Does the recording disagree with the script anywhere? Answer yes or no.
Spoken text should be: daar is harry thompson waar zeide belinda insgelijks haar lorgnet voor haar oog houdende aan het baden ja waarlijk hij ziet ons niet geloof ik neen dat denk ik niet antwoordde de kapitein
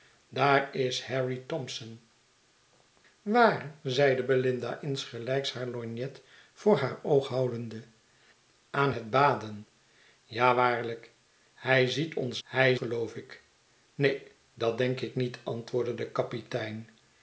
yes